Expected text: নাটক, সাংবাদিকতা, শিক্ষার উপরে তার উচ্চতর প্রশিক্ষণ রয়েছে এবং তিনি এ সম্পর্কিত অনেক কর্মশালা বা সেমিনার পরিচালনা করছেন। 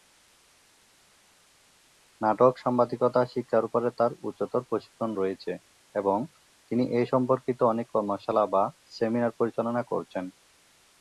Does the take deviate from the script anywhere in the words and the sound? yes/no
no